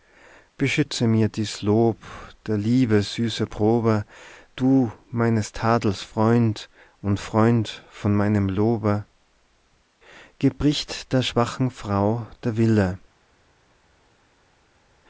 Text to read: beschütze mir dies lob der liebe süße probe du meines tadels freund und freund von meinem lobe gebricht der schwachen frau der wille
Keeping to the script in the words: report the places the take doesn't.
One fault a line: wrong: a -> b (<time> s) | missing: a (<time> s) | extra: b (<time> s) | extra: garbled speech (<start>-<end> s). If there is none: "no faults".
no faults